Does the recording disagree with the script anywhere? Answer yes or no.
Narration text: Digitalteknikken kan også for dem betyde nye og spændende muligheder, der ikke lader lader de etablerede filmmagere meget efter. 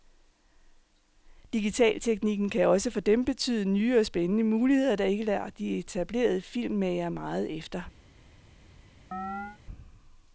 yes